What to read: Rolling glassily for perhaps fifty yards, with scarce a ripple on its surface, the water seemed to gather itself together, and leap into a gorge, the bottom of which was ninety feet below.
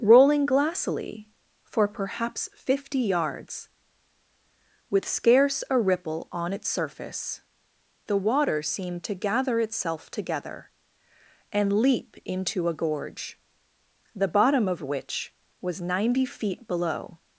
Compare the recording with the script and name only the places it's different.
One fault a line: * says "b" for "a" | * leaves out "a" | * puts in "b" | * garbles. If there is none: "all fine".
all fine